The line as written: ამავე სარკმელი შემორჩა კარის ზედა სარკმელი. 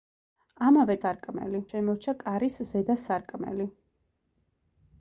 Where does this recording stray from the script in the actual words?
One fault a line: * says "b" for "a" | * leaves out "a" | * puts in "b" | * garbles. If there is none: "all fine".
all fine